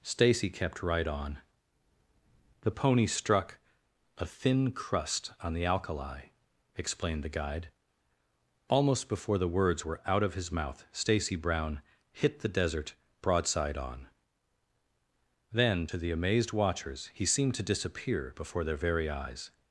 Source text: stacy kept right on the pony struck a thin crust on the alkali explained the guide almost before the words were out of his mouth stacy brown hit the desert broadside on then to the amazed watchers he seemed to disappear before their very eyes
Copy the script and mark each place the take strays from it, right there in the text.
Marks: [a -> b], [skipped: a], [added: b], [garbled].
stacy kept right on the pony struck a thin crust on the alkali explained the guide almost before the words were out of his mouth stacy brown hit the desert broadside on then to the amazed watchers he seemed to disappear before their very eyes